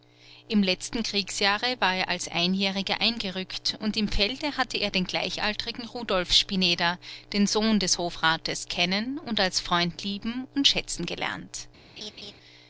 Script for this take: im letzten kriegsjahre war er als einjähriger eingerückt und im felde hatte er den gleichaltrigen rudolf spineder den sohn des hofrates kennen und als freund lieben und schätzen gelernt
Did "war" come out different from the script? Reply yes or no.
no